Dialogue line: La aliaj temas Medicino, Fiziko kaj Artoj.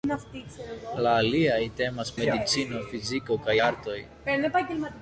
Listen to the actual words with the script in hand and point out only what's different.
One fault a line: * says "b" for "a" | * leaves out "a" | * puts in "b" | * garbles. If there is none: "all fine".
all fine